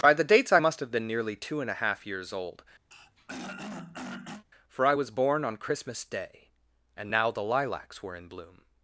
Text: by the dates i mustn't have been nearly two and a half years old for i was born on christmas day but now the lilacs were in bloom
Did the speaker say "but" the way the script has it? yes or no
no